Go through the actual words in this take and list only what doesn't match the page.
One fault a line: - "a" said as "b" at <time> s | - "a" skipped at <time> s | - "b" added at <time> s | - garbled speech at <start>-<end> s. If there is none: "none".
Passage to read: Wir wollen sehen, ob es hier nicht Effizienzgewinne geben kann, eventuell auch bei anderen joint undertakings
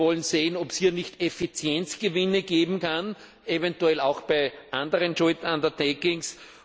none